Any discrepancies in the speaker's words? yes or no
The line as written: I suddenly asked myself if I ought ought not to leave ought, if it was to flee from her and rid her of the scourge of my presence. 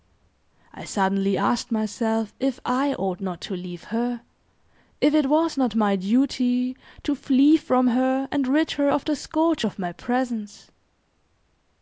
yes